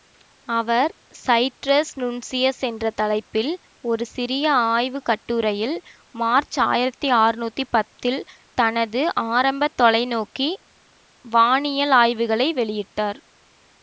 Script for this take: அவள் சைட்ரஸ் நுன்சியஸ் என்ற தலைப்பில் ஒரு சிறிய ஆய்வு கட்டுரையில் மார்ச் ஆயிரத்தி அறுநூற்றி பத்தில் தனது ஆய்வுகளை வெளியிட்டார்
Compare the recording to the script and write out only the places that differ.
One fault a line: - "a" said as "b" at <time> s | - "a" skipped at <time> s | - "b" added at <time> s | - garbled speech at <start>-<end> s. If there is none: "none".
- "அவள்" said as "அவர்" at 0.5 s
- "ஆரம்ப தொலைநோக்கி வானியல்" added at 9.3 s